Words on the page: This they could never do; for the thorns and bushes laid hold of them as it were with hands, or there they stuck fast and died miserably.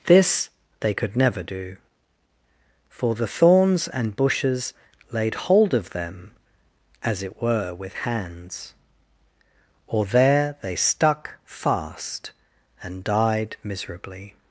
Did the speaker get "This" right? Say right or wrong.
right